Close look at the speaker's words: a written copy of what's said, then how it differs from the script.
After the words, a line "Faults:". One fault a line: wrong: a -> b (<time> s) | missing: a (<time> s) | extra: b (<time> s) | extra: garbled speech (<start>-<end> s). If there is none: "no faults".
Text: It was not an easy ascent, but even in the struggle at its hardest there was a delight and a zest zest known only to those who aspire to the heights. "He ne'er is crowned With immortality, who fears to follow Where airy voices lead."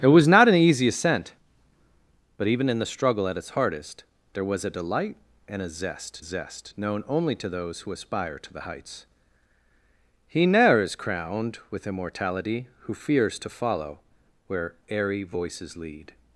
It was not an easy ascent, but even in the struggle at its hardest there was a delight and a zest zest known only to those who aspire to the heights. "He ne'er is crowned With immortality, who fears to follow Where airy voices lead."
Faults:
no faults